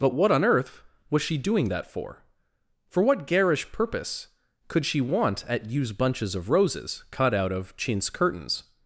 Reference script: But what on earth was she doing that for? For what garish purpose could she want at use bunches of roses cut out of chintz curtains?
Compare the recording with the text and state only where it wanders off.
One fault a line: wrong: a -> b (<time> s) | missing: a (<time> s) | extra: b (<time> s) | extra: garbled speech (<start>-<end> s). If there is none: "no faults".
no faults